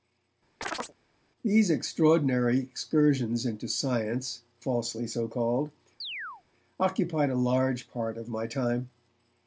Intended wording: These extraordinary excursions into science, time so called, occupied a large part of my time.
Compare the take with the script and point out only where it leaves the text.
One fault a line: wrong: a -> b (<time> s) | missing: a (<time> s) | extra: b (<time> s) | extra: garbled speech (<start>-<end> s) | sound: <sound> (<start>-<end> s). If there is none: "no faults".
sound: chirp (0.6-0.9 s)
wrong: time -> falsely (4.6 s)
sound: chirp (6.0-6.4 s)